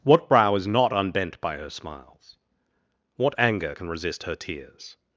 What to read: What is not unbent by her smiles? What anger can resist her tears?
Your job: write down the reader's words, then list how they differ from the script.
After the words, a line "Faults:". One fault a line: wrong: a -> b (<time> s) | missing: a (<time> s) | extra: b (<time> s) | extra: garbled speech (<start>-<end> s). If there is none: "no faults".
What brow is not unbent by her smiles? What anger can resist her tears?
Faults:
extra: brow (0.3 s)